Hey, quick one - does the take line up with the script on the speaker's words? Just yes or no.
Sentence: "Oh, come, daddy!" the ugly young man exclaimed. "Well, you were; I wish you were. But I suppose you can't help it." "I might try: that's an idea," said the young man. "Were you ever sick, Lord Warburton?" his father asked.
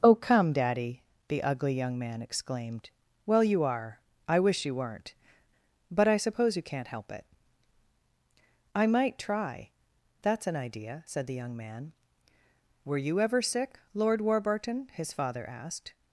no